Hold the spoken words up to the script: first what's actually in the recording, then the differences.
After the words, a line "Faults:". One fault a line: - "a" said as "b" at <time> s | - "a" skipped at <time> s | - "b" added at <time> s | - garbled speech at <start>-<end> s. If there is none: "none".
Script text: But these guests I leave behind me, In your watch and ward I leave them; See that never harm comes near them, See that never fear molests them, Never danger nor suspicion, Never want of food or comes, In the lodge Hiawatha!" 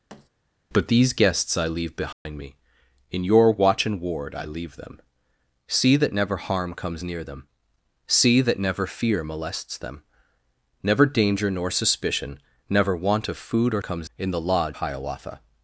But these guests I leave behind me, In your watch and ward I leave them; See that never harm comes near them, See that never fear molests them, Never danger nor suspicion, Never want of food or comes, In the lodge Hiawatha!"
Faults:
none